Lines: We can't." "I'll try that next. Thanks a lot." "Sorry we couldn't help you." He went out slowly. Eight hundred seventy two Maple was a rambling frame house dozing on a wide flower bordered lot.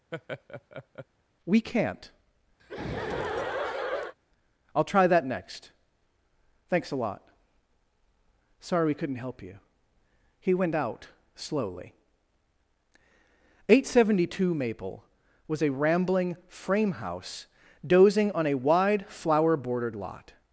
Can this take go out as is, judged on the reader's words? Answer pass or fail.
pass